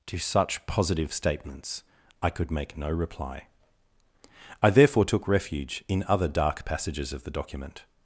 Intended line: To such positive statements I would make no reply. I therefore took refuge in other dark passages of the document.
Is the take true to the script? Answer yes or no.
no